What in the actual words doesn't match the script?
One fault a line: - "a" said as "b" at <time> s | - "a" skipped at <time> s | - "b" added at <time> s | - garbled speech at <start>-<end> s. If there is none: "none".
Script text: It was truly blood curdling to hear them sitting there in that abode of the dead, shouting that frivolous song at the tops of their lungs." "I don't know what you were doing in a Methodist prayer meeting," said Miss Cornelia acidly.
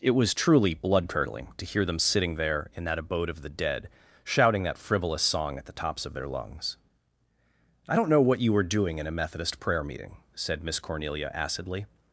none